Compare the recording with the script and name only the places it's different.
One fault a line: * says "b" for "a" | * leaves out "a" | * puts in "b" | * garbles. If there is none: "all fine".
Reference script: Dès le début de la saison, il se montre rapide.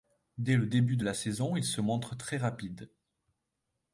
* puts in "très"